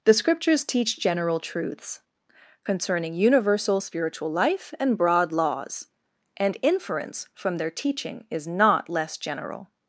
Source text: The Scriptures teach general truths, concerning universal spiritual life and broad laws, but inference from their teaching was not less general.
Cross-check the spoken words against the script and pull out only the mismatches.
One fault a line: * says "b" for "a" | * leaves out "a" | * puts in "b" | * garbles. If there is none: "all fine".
* says "and" for "but"
* says "is" for "was"